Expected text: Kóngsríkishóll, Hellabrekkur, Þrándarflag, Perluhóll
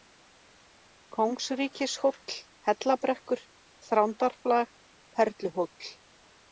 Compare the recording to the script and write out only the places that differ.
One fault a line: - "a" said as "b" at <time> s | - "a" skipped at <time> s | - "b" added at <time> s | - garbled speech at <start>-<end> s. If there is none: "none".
none